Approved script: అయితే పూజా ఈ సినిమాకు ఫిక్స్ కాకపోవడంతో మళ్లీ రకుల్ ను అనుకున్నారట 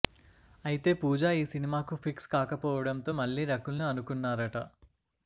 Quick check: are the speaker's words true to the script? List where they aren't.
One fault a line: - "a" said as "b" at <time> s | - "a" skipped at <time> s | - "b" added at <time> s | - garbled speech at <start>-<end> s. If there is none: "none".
none